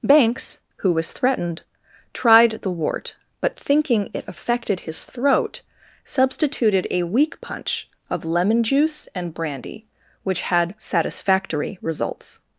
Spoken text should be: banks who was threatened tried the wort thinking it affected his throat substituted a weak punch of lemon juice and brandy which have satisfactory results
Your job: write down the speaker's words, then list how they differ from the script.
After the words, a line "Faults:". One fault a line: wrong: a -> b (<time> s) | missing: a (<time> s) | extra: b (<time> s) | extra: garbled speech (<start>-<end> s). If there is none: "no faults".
banks who was threatened tried the wort but thinking it affected his throat substituted a weak punch of lemon juice and brandy which had satisfactory results
Faults:
extra: but (3.4 s)
wrong: have -> had (10.4 s)